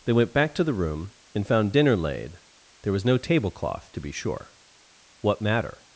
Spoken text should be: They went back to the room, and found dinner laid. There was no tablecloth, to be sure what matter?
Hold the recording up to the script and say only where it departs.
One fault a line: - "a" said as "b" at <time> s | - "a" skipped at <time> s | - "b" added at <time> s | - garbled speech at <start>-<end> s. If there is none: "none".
none